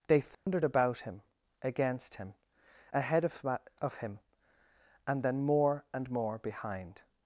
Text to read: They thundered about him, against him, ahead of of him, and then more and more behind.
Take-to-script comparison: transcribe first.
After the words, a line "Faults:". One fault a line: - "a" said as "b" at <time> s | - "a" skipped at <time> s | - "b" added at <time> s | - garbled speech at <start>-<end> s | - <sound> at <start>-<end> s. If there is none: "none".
They thundered about him, against him, ahead of of him, and then more and more behind.
Faults:
- dropout at 0.3-0.5 s